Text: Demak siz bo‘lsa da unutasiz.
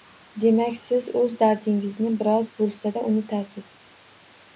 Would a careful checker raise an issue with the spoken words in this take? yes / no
yes